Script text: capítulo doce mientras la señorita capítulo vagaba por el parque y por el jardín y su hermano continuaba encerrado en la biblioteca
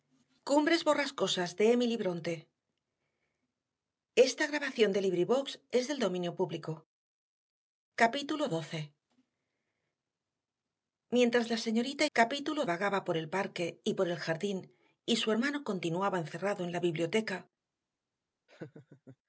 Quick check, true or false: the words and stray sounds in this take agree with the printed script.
false